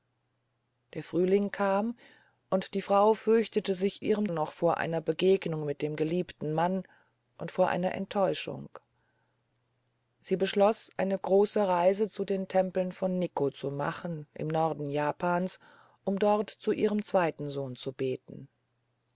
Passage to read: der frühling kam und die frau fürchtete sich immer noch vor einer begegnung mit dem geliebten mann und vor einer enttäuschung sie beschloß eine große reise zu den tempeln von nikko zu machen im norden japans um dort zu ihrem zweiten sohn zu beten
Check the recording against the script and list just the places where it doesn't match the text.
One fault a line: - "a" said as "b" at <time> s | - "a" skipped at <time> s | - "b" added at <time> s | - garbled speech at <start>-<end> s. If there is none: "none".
- "immer" said as "ihrem" at 4.0 s